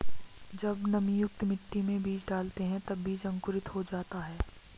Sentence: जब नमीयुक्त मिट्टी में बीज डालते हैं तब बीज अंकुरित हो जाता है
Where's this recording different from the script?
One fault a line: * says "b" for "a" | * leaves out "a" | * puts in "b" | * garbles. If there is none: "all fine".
all fine